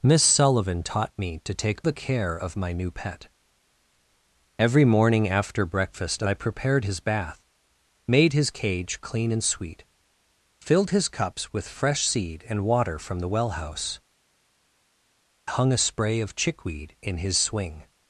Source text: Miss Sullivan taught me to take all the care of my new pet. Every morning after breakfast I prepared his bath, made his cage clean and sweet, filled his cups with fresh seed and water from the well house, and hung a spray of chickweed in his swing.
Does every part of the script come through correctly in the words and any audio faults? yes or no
no